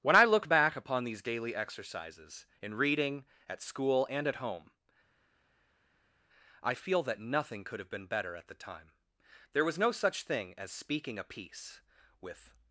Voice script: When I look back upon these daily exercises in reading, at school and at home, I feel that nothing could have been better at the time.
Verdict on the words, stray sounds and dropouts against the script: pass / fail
fail